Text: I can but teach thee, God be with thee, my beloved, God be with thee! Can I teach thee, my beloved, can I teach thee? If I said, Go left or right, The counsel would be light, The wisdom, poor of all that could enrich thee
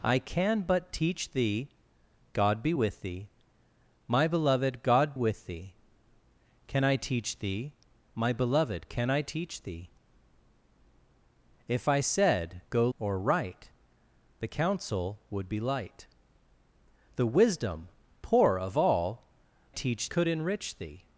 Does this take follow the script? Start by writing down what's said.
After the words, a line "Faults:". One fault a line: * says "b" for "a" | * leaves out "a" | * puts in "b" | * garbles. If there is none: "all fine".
I can but teach thee, God be with thee, my beloved, God with thee! Can I teach thee, my beloved, can I teach thee? If I said, Go or right, The counsel would be light, The wisdom, poor of all teach could enrich thee
Faults:
* leaves out "be"
* leaves out "left"
* says "teach" for "that"